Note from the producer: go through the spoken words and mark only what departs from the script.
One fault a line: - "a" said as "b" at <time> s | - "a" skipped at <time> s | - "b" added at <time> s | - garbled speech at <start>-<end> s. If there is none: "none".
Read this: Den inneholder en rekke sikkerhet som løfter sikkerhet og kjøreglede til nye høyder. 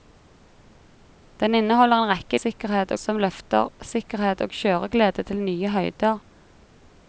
none